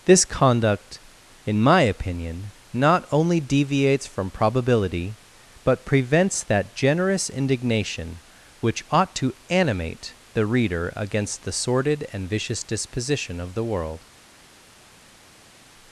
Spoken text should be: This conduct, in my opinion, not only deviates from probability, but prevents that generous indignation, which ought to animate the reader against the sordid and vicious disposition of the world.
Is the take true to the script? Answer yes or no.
yes